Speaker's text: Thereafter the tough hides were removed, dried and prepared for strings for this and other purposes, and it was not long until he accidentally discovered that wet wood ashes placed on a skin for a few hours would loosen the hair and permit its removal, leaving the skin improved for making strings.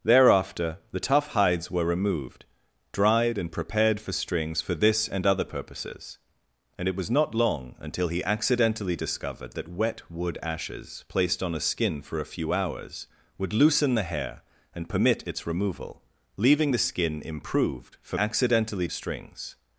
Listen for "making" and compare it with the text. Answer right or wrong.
wrong